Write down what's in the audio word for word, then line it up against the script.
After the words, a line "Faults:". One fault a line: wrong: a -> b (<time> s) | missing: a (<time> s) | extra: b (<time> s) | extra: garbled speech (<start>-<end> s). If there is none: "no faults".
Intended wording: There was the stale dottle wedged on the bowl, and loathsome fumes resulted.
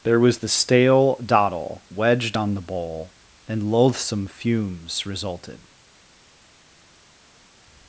There was the stale dottle wedged on the bowl, and loathsome fumes resulted.
Faults:
no faults